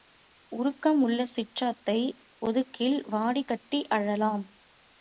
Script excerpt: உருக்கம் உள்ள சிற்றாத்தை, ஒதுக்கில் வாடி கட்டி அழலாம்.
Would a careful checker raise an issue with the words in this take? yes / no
no